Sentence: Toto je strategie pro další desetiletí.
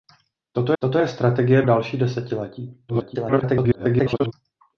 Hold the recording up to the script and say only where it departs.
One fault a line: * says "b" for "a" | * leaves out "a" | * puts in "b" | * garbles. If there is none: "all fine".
* puts in "toto"
* leaves out "pro"
* garbles